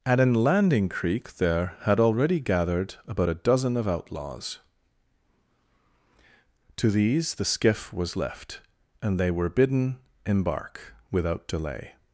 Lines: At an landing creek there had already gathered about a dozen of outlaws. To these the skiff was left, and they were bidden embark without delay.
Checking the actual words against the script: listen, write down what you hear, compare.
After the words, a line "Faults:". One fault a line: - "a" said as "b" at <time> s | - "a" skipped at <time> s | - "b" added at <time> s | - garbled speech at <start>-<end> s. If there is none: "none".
At an landing creek there had already gathered about a dozen of outlaws. To these the skiff was left, and they were bidden embark without delay.
Faults:
none